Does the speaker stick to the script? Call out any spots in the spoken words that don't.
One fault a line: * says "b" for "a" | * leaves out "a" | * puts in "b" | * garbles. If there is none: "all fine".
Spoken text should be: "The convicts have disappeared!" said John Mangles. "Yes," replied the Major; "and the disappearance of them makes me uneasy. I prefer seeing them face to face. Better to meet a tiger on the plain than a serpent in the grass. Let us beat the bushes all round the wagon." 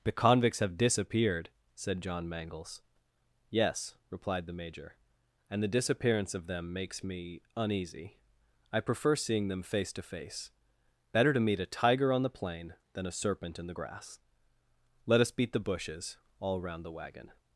all fine